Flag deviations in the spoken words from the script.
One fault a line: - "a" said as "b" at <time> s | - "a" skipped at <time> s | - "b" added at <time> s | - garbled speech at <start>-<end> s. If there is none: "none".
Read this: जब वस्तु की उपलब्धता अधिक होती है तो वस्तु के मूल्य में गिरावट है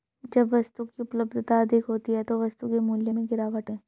none